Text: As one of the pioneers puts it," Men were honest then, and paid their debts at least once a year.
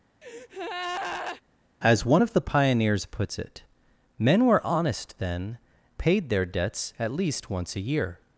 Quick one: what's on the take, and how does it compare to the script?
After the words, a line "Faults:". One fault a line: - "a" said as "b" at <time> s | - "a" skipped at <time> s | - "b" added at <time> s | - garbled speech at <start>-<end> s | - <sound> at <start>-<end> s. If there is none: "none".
As one of the pioneers puts it," Men were honest then, paid their debts at least once a year.
Faults:
- breath at 0.2-1.4 s
- "and" skipped at 5.6 s